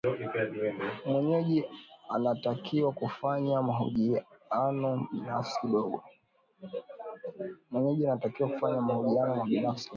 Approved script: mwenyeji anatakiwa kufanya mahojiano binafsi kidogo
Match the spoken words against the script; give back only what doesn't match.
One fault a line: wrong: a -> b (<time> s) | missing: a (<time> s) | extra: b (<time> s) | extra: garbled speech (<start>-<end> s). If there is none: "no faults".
no faults